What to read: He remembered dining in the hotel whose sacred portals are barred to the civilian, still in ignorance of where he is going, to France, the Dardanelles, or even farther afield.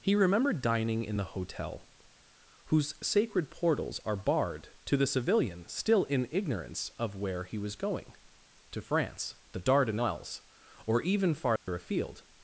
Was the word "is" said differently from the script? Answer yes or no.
yes